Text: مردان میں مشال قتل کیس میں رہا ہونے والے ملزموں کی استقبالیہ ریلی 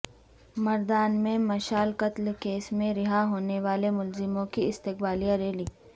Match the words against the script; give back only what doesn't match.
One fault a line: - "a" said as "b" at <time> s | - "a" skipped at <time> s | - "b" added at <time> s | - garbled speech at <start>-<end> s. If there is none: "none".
none